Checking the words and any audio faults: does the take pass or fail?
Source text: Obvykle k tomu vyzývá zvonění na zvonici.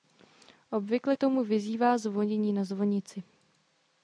pass